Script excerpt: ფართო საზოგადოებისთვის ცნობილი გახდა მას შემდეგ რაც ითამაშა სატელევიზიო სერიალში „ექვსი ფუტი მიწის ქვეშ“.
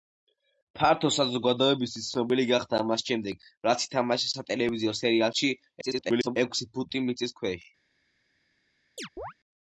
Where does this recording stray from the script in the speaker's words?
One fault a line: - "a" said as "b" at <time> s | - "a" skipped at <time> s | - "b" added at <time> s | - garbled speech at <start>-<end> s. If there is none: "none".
- garbled speech at 5.8-6.4 s